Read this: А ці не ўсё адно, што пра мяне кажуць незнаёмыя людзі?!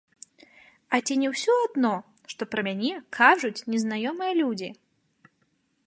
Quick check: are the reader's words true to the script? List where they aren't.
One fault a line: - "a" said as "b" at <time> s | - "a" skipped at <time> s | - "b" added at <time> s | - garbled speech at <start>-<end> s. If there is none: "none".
none